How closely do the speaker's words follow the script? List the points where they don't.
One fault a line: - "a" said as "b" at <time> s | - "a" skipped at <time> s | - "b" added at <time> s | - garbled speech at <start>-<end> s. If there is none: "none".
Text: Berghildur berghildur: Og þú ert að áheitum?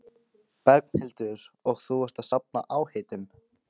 - "berghildur" skipped at 1.4 s
- "safna" added at 2.3 s